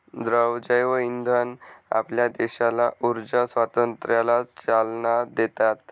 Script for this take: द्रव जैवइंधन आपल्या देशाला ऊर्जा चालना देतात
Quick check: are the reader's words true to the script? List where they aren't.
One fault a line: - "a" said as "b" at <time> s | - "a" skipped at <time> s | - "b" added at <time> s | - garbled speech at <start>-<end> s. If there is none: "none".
- "स्वातंत्र्याला" added at 3.4 s